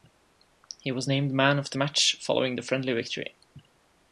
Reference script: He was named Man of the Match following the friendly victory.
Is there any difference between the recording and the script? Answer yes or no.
no